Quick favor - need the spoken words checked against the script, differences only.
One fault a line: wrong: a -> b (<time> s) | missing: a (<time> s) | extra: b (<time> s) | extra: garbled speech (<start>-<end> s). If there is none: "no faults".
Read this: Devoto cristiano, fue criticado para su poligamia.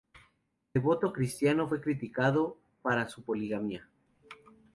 no faults